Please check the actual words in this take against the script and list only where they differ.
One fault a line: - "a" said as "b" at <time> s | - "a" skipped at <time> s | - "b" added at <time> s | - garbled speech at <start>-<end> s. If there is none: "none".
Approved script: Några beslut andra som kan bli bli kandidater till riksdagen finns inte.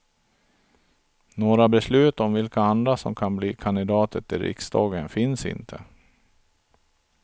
- "om vilka" added at 2.2 s
- "bli" skipped at 3.6 s